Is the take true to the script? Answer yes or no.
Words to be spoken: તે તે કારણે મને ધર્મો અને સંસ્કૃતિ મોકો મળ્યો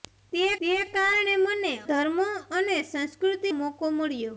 yes